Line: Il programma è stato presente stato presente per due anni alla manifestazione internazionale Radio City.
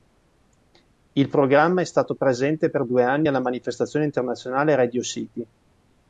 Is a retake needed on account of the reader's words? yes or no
yes